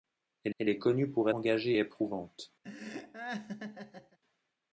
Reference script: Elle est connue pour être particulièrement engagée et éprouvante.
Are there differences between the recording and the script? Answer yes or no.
yes